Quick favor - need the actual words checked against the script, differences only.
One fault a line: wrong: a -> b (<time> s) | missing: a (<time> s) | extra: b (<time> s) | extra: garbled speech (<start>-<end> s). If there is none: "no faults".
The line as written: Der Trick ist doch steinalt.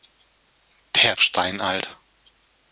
missing: Trick ist doch (1.1 s)